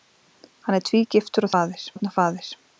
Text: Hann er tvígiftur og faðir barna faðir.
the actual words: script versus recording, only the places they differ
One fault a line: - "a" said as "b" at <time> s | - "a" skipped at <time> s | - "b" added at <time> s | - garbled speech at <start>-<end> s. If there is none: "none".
none